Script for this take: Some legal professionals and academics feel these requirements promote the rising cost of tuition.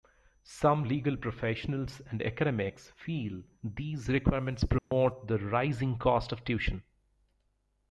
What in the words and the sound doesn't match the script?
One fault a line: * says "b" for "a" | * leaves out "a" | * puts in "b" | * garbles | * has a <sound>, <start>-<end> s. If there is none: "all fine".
* has a dropout, 4.8-4.9 s